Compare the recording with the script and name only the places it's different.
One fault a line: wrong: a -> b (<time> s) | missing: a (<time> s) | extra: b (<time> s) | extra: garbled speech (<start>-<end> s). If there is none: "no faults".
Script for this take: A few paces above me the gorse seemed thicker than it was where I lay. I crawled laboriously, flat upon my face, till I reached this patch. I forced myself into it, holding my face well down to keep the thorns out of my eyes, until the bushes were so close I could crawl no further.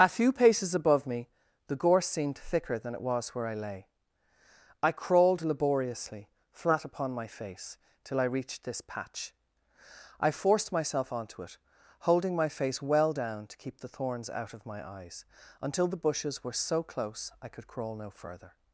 wrong: into -> onto (11.1 s)